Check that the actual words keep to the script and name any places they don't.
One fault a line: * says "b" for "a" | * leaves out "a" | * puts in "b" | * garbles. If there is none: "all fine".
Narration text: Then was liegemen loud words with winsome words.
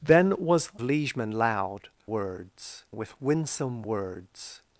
all fine